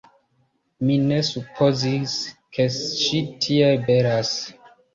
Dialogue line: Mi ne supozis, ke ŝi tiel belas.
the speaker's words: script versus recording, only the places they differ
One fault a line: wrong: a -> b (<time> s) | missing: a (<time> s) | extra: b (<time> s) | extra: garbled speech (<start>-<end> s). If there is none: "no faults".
no faults